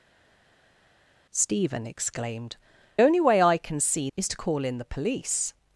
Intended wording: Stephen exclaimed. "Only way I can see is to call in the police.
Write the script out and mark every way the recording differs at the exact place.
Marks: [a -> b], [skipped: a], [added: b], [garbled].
Stephen exclaimed. "Only way I can see is to call in the police.